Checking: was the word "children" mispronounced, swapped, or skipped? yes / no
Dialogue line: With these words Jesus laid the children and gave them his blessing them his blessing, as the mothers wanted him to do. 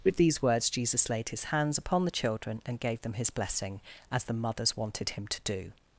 no